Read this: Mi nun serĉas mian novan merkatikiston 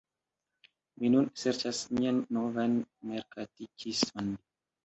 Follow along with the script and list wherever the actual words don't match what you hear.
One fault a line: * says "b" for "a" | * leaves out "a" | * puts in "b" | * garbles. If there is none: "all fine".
all fine